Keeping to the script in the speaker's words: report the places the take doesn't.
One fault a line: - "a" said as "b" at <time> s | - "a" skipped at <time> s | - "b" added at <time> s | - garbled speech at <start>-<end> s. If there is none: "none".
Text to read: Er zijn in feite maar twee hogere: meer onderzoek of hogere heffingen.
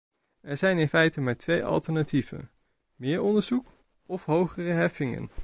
- "hogere" said as "alternatieven" at 1.6 s